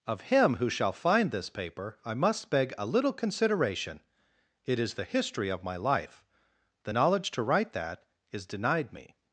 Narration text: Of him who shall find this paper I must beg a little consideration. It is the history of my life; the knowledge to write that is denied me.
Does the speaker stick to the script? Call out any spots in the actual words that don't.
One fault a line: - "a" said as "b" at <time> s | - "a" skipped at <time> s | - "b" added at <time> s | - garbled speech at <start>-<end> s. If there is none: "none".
none